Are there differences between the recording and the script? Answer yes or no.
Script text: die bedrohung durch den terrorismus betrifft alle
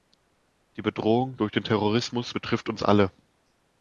yes